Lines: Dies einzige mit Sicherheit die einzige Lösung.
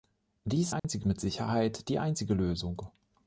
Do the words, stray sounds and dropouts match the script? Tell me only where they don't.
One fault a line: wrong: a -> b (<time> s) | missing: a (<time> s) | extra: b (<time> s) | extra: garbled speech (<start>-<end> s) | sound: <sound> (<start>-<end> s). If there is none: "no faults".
sound: dropout (0.8-0.8 s)